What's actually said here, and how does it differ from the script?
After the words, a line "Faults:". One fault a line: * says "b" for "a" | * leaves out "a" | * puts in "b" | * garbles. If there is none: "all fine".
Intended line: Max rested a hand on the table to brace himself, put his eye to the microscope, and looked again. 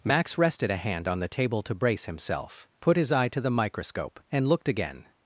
Max rested a hand on the table to brace himself, put his eye to the microscope, and looked again.
Faults:
all fine